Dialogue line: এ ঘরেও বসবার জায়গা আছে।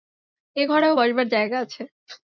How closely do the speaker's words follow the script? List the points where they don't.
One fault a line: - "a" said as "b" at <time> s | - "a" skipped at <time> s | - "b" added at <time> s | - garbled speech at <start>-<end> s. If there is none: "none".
none